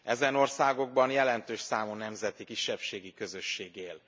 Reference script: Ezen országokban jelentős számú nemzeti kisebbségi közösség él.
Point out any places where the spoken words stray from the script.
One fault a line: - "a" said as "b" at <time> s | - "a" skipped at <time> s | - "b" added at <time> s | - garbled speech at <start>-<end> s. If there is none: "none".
none